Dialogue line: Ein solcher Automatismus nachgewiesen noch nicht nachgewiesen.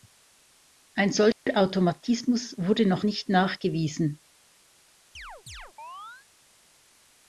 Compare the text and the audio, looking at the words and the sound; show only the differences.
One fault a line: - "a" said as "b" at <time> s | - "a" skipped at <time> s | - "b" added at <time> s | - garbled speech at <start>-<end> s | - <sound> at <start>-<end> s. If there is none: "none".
- dropout at 1.3-1.5 s
- "nachgewiesen" said as "wurde" at 2.6 s
- chirp at 5.1-6.3 s